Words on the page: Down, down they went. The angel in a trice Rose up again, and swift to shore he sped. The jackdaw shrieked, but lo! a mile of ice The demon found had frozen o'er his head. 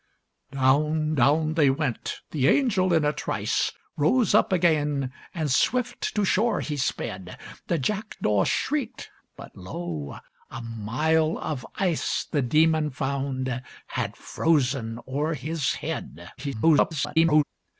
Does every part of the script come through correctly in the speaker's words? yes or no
no